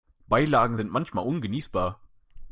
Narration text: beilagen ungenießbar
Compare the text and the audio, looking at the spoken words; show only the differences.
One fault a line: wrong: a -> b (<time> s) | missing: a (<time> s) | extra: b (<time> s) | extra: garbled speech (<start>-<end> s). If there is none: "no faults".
extra: sind manchmal (0.7 s)